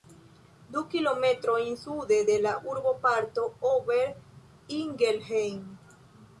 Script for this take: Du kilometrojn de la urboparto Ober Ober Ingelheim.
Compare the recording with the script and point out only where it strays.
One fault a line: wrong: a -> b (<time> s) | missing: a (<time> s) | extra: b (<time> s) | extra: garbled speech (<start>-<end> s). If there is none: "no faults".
extra: sude (1.8 s)
missing: Ober (4.1 s)